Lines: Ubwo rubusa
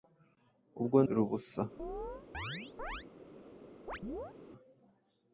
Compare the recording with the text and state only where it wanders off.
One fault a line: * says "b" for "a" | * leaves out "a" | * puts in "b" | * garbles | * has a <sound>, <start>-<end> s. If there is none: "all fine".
* has a chirp, 1.8-3.1 s
* has a chirp, 3.9-4.3 s